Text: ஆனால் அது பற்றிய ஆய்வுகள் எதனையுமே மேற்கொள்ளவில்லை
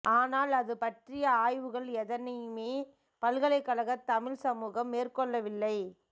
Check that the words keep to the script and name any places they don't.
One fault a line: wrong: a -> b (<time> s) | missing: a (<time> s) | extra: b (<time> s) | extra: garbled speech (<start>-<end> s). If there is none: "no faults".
extra: பல்கலைக்கழகத் தமிழ்ச் சமூகம் (3.2 s)